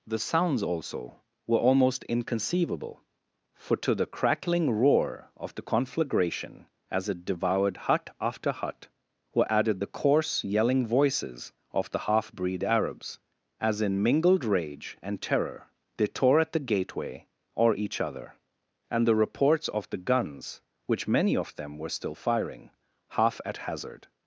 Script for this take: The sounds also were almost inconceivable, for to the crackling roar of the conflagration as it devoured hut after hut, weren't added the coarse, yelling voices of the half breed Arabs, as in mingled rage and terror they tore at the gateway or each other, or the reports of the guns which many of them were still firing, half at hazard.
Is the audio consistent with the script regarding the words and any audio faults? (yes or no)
no